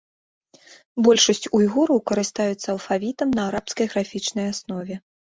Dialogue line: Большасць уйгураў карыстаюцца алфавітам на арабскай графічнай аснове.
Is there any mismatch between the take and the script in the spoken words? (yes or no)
no